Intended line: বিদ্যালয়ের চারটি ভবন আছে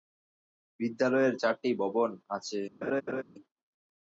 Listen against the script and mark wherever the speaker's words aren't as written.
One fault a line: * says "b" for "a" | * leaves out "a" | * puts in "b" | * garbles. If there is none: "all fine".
all fine